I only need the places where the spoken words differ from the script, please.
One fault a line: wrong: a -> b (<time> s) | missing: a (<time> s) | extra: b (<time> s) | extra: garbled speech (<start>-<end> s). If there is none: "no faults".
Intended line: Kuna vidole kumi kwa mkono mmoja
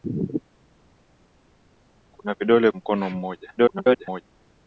missing: kumi kwa (2.7 s)
extra: garbled speech (3.6-4.2 s)